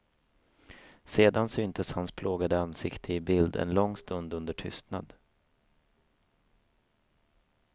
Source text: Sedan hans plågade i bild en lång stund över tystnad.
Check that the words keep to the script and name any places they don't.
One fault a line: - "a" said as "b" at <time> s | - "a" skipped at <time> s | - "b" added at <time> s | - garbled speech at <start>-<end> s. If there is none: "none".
- "syntes" added at 1.5 s
- "ansikte" added at 2.6 s
- "över" said as "under" at 4.3 s